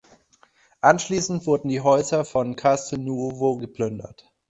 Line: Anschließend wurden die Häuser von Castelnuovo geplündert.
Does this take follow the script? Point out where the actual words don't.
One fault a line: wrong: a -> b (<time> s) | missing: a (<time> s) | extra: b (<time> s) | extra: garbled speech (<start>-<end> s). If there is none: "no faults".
no faults